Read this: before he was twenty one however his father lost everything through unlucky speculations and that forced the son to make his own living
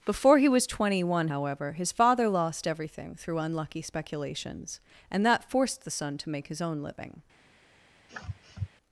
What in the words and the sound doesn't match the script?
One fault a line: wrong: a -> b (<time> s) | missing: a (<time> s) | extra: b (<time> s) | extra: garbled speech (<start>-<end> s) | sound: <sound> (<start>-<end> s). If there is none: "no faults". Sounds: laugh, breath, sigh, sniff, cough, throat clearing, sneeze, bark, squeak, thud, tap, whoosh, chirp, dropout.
sound: sniff (8.1-8.7 s)